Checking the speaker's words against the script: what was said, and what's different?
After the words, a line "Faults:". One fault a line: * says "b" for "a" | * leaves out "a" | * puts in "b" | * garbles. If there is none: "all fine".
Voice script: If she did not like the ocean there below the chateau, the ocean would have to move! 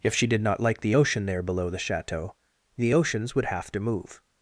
If she did not like the ocean there below the chateau, the oceans would have to move!
Faults:
* says "oceans" for "ocean"